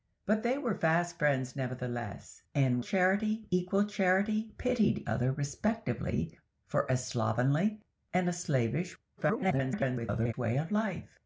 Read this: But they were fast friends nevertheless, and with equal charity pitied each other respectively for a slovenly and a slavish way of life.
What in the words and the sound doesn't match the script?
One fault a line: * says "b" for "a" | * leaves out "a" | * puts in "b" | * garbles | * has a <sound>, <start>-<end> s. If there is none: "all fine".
* says "charity" for "with"
* leaves out "each"
* garbles